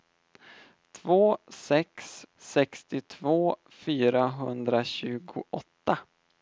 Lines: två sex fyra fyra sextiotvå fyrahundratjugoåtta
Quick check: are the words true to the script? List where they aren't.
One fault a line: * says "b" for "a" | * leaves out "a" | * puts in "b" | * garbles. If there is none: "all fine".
* leaves out "fyra fyra"